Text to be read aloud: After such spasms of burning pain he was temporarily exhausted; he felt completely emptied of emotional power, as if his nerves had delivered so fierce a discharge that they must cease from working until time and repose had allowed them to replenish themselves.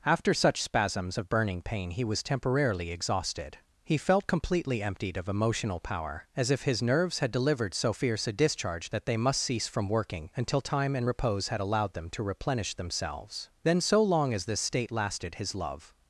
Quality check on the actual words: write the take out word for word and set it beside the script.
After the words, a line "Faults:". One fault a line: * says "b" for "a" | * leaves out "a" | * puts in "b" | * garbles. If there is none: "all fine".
After such spasms of burning pain he was temporarily exhausted; he felt completely emptied of emotional power, as if his nerves had delivered so fierce a discharge that they must cease from working until time and repose had allowed them to replenish themselves. Then, so long as this state lasted, his love
Faults:
* puts in "Then so long as this state lasted his love"